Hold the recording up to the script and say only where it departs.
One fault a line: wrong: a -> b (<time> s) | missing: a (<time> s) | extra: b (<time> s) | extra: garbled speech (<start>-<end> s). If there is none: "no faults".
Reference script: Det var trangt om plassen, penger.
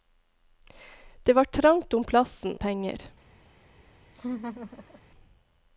no faults